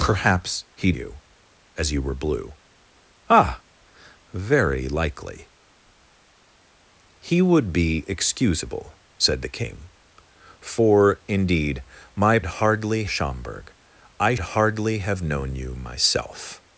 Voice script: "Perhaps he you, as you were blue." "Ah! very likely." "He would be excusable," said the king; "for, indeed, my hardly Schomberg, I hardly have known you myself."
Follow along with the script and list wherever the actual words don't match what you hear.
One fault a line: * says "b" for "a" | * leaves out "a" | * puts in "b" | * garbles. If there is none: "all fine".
all fine